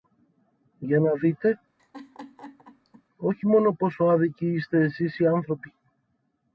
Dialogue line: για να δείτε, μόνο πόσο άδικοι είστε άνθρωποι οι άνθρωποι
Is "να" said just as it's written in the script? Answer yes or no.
yes